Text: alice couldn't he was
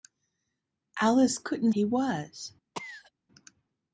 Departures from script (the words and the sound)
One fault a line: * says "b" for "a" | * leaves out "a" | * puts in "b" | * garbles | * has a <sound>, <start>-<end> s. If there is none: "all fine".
* has a cough, 2.7-3.1 s